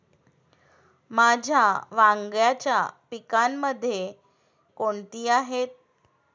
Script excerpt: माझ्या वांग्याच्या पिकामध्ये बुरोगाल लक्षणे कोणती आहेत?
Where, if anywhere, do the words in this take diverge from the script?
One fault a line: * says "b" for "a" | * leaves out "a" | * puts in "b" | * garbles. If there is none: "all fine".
* leaves out "बुरोगाल लक्षणे"